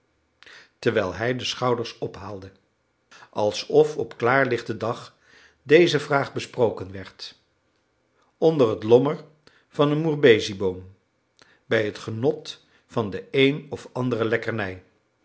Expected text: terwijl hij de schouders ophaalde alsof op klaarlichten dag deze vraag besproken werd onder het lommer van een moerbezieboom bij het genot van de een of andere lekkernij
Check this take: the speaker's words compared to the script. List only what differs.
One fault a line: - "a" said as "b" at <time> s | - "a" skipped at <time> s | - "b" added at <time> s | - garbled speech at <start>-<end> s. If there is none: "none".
none